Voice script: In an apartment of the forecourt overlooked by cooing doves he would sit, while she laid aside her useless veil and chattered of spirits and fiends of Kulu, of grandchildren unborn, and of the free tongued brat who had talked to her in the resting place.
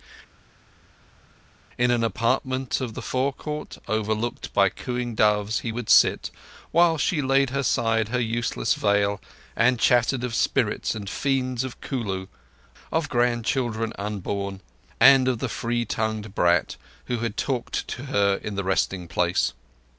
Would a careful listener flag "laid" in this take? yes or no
no